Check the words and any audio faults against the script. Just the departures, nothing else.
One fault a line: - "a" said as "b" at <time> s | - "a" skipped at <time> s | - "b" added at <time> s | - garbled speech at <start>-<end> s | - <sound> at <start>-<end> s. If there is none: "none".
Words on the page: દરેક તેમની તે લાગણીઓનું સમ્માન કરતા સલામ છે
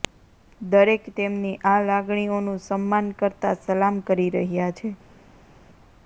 - "તે" said as "આ" at 1.6 s
- "કરી રહ્યા" added at 4.1 s